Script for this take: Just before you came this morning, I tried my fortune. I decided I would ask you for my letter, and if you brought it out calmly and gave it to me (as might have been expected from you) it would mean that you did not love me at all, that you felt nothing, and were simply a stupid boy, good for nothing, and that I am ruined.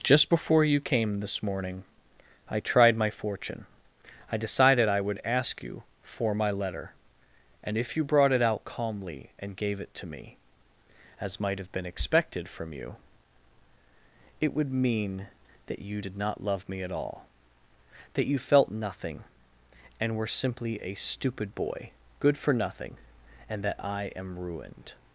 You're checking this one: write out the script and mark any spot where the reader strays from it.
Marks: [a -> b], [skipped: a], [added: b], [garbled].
Just before you came this morning, I tried my fortune. I decided I would ask you for my letter, and if you brought it out calmly and gave it to me (as might have been expected from you) it would mean that you did not love me at all, that you felt nothing, and were simply a stupid boy, good for nothing, and that I am ruined.